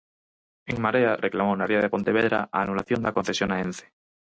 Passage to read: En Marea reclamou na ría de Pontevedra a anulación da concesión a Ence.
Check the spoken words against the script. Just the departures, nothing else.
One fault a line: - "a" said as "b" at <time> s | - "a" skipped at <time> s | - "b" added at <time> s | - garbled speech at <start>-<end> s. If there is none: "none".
none